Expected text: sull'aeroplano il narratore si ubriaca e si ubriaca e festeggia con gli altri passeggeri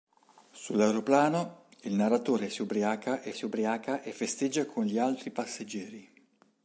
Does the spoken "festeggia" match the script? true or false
true